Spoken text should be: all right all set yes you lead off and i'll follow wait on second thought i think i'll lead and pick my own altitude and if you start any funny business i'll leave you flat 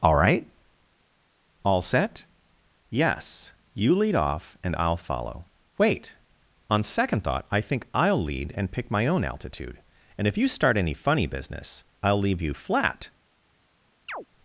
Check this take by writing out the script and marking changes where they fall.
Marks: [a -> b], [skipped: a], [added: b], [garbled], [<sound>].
all right all set yes you lead off and i'll follow wait on second thought i think i'll lead and pick my own altitude and if you start any funny business i'll leave you flat [chirp]